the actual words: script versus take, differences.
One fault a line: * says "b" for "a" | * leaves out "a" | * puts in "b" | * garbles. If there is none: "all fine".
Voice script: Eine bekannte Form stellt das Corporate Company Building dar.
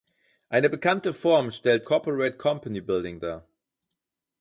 * leaves out "das"